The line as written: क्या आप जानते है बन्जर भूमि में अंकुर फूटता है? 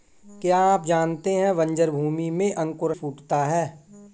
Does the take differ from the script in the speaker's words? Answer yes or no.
no